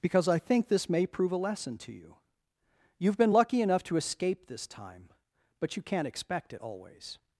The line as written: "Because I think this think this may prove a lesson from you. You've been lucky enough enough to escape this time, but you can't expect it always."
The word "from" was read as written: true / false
false